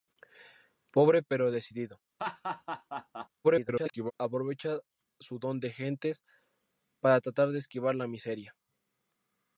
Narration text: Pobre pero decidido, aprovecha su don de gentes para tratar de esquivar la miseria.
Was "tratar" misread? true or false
false